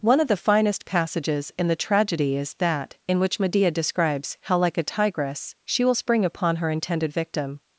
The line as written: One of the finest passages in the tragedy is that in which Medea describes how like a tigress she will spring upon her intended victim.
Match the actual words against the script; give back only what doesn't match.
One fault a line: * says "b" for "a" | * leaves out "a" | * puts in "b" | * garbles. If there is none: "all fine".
all fine